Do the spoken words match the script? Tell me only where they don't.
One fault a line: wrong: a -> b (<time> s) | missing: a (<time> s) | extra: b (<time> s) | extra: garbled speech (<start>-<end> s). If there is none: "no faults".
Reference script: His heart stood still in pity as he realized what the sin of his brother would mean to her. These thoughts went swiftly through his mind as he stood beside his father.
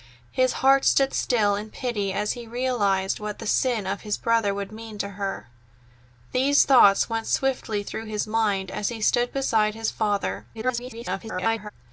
extra: garbled speech (10.5-11.7 s)